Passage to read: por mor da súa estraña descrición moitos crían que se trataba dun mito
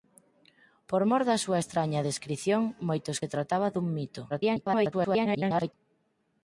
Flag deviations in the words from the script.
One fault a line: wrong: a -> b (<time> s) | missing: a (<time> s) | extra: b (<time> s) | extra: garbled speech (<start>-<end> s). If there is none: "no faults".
missing: crían que (3.2 s)
extra: garbled speech (4.3-5.7 s)